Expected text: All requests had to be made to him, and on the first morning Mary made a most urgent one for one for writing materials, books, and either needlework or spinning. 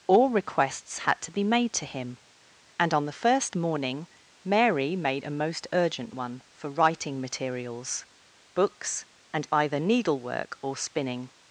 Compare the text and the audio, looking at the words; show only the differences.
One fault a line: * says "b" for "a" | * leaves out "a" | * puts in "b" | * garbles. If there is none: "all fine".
* leaves out "one for"